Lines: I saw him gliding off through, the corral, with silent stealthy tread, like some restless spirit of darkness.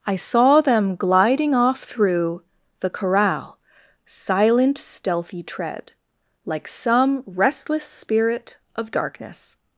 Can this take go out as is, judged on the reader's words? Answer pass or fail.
fail